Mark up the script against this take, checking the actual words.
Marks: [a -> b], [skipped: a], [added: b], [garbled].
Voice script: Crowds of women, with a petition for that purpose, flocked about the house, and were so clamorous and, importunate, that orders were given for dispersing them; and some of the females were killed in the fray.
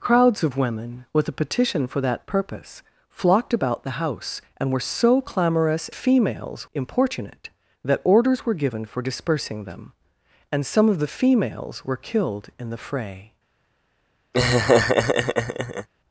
Crowds of women, with a petition for that purpose, flocked about the house, and were so clamorous [and, -> females] importunate, that orders were given for dispersing them; and some of the females were killed in the fray.